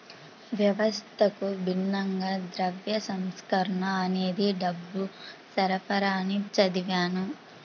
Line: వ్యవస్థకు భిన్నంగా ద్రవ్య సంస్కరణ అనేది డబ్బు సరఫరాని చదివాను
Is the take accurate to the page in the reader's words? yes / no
yes